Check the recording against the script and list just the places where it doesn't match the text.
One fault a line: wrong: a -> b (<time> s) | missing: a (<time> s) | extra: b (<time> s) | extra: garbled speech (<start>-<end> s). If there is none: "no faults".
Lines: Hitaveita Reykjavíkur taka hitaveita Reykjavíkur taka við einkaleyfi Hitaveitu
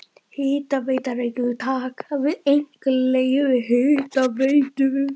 missing: hitaveita Reykjavíkur taka (2.2 s)